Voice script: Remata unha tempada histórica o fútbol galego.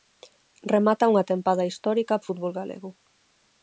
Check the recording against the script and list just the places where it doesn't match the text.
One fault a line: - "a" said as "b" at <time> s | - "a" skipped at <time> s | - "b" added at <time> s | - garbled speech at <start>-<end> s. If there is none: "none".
none